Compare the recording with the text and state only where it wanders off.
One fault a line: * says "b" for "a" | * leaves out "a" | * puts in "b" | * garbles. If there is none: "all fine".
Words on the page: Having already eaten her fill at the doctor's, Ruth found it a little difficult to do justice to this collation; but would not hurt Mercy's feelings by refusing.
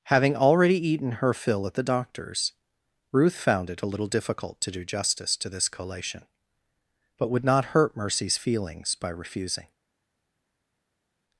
all fine